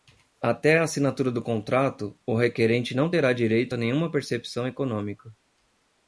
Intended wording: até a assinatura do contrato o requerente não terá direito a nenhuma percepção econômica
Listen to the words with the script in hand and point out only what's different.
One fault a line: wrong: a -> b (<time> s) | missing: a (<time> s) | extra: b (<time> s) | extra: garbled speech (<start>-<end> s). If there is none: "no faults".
no faults